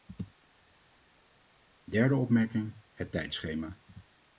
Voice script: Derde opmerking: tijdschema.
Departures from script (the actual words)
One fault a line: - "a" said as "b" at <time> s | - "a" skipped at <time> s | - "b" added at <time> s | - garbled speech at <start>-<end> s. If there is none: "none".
- "het" added at 2.9 s